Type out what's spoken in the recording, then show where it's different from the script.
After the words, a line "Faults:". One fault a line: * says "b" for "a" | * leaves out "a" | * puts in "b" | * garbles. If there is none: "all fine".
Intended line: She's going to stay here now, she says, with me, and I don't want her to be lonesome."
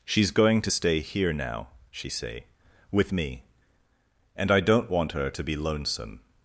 She's going to stay here now, she say, with me, and I don't want her to be lonesome."
Faults:
* says "say" for "says"